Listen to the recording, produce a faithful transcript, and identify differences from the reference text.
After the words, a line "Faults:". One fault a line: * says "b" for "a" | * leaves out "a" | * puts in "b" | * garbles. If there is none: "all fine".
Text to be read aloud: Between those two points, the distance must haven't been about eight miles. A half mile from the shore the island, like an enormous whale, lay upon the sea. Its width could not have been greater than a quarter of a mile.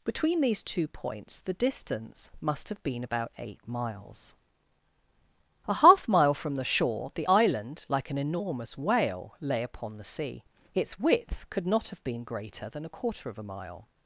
Between these two points, the distance must have been about eight miles. A half mile from the shore the island, like an enormous whale, lay upon the sea. Its width could not have been greater than a quarter of a mile.
Faults:
* says "these" for "those"
* says "have" for "haven't"